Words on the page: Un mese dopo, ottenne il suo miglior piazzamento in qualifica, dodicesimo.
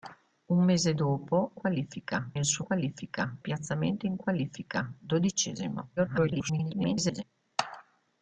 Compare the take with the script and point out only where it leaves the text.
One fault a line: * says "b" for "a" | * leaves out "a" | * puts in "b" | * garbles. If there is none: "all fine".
* says "qualifica" for "ottenne"
* says "qualifica" for "miglior"
* garbles